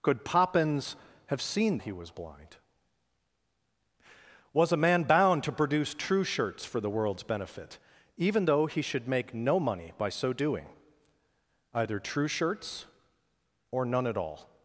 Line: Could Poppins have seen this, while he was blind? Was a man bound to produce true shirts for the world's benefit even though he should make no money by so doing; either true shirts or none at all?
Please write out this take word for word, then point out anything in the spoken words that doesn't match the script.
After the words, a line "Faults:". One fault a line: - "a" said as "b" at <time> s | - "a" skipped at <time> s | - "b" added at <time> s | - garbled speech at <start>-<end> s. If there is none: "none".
Could Poppins have seen he was blind? Was a man bound to produce true shirts for the world's benefit even though he should make no money by so doing; either true shirts or none at all?
Faults:
- "this while" skipped at 1.8 s